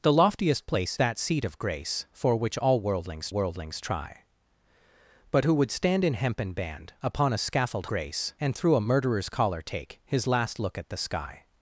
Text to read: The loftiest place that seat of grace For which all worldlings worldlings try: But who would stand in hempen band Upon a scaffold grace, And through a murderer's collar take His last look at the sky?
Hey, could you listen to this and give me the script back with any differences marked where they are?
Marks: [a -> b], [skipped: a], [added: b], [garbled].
The loftiest place that seat of grace For which all worldlings worldlings try: But who would stand in hempen band Upon a scaffold grace, And through a murderer's collar take His last look at the sky?